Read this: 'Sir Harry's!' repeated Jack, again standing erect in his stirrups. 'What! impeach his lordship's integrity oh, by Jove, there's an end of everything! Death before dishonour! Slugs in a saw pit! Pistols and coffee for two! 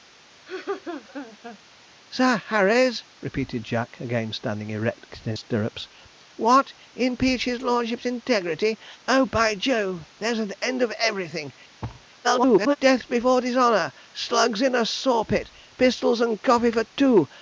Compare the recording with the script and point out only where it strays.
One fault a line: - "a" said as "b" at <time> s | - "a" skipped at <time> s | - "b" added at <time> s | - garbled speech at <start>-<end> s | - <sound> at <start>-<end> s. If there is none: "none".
- laugh at 0.5-1.6 s
- "his" skipped at 5.4 s
- thud at 11.8-12.1 s
- garbled speech at 12.2-12.8 s